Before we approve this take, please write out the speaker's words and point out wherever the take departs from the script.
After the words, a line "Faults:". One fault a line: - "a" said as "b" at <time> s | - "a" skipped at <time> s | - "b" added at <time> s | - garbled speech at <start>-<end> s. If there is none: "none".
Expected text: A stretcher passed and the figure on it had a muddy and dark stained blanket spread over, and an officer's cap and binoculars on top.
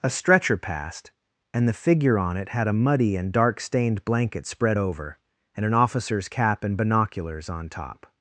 A stretcher passed and the figure on it had a muddy and dark stained blanket spread over, and an officer's cap and binoculars on top.
Faults:
none